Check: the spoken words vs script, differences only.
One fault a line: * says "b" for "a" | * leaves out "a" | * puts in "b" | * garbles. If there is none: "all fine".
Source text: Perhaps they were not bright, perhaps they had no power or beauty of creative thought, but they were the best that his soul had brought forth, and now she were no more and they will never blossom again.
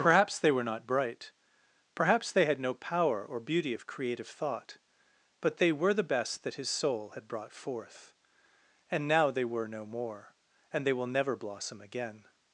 * says "they" for "she"